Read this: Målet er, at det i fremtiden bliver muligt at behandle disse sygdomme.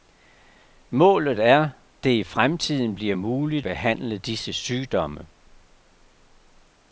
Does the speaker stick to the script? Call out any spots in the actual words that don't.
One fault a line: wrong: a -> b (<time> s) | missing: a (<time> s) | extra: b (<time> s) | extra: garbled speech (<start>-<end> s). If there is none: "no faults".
missing: at (1.7 s)
missing: at (3.7 s)